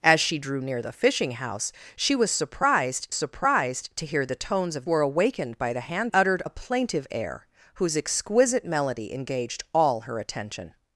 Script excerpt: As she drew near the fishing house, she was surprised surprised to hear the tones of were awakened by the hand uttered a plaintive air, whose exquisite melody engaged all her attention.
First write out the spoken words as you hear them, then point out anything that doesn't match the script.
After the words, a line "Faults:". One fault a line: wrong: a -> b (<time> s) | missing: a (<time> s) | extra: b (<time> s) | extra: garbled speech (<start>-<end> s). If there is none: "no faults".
As she drew near the fishing house, she was surprised surprised to hear the tones of were awakened by the hand uttered a plaintive air, whose exquisite melody engaged all her attention.
Faults:
no faults